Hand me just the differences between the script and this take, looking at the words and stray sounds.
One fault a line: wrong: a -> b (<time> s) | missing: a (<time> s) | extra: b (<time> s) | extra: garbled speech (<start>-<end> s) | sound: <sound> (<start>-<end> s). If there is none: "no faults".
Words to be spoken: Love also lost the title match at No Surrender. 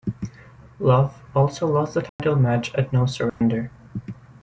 sound: dropout (2.1-2.2 s)
sound: dropout (3.3-3.4 s)